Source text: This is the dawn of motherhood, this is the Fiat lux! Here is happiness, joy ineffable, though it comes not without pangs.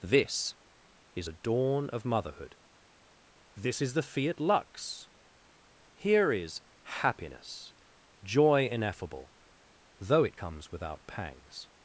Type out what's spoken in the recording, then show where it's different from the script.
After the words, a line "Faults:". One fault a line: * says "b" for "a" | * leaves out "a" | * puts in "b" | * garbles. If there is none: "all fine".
This is a dawn of motherhood, this is the Fiat lux! Here is happiness, joy ineffable, though it comes without pangs.
Faults:
* says "a" for "the"
* leaves out "not"